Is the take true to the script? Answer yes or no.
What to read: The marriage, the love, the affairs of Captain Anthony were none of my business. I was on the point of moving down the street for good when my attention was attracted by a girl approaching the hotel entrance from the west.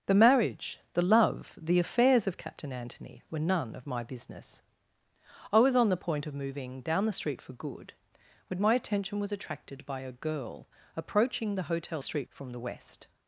no